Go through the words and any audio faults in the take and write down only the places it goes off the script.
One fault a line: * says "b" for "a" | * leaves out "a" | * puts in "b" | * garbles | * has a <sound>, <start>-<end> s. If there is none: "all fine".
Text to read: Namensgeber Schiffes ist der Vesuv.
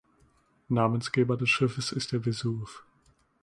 * puts in "des"